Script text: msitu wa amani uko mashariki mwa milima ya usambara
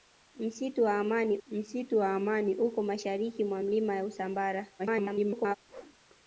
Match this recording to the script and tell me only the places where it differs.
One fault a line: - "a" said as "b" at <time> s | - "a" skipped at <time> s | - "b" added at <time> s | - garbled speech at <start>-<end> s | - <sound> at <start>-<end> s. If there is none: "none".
- "msitu wa amani" added at 1.5 s
- garbled speech at 4.8-5.6 s
- whoosh at 5.7-6.0 s